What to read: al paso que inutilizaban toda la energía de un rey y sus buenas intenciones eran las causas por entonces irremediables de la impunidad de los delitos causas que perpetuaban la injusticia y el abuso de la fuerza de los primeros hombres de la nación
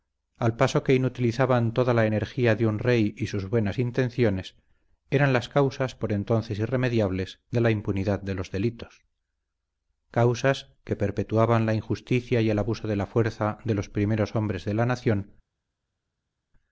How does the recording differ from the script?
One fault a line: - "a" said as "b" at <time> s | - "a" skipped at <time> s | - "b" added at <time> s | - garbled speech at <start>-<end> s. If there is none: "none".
none